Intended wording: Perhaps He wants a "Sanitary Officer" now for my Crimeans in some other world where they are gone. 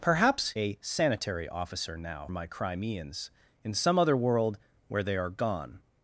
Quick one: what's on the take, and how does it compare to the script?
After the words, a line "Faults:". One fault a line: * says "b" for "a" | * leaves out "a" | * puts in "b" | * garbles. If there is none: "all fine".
Perhaps A "Sanitary Officer" now my Crimeans in some other world where they are gone.
Faults:
* leaves out "He wants"
* leaves out "for"